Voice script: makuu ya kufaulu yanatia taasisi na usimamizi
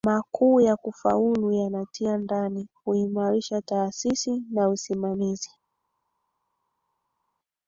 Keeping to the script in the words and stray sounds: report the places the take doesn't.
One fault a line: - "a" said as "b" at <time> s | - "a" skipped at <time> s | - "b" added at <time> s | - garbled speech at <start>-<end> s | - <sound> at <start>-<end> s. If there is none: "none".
- "ndani kuimarisha" added at 2.2 s